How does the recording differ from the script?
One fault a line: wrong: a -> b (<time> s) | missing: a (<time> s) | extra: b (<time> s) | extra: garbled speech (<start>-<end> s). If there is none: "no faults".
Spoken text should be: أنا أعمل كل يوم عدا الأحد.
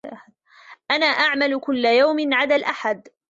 no faults